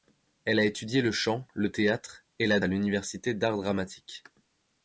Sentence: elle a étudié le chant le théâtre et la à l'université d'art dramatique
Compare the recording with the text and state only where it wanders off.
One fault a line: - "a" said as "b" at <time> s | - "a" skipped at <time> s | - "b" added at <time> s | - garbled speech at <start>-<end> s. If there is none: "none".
none